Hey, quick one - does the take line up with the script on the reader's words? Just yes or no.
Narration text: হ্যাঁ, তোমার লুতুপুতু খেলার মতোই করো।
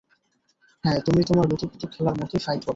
no